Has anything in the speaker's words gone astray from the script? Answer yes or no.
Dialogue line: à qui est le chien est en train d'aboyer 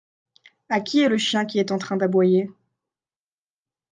yes